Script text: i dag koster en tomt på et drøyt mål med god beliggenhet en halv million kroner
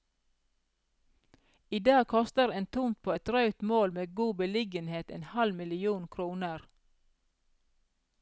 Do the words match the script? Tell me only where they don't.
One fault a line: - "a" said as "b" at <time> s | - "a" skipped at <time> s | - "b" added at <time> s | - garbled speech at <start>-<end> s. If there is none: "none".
none